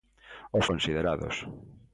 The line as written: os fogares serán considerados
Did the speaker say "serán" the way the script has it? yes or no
no